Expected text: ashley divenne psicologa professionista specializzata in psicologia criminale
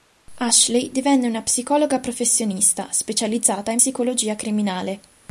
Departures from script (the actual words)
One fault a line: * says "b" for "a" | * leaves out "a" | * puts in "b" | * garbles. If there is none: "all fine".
* puts in "una"